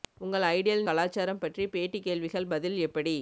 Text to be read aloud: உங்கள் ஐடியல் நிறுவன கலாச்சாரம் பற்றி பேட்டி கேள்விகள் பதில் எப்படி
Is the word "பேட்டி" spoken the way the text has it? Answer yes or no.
yes